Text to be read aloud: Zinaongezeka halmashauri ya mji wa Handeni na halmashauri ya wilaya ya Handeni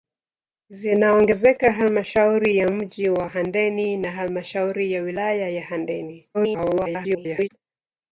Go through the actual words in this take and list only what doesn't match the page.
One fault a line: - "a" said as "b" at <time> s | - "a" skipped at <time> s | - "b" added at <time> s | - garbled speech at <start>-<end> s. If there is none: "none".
- garbled speech at 6.3-7.5 s